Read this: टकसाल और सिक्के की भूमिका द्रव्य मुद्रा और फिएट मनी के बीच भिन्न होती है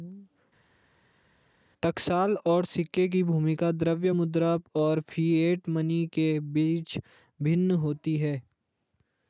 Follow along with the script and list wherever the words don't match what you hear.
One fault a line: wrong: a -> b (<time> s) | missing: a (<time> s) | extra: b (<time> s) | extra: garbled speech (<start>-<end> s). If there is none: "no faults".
no faults